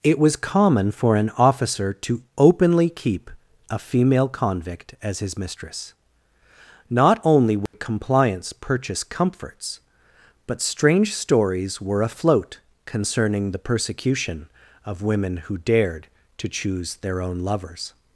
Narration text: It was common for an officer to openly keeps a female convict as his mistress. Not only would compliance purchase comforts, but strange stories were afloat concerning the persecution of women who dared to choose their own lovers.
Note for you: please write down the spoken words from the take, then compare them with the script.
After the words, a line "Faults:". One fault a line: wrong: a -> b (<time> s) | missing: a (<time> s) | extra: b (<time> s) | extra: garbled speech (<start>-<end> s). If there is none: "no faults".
It was common for an officer to openly keep a female convict as his mistress. Not only would compliance purchase comforts, but strange stories were afloat concerning the persecution of women who dared to choose their own lovers.
Faults:
wrong: keeps -> keep (2.9 s)